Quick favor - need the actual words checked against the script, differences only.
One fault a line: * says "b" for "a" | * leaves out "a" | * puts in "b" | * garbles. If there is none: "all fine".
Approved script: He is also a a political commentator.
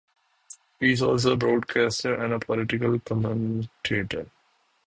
* puts in "broadcaster and"